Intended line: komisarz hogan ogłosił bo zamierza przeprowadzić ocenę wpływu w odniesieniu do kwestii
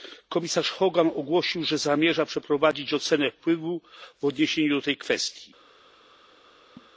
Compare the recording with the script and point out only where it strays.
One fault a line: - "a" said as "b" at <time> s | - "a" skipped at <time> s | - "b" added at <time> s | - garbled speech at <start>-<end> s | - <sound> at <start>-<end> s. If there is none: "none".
- "bo" said as "że" at 1.6 s
- "tej" added at 4.8 s
- laugh at 6.8-6.9 s